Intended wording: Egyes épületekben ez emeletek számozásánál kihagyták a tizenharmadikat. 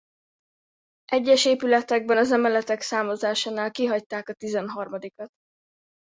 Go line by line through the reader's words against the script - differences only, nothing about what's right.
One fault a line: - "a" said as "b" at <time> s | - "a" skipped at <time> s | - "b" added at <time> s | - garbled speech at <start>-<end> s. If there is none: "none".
- "ez" said as "az" at 2.2 s